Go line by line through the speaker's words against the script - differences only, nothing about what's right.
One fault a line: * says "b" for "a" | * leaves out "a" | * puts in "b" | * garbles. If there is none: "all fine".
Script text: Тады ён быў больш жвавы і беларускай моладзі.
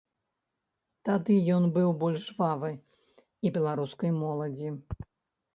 all fine